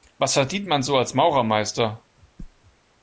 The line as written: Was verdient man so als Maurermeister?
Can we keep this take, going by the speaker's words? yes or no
yes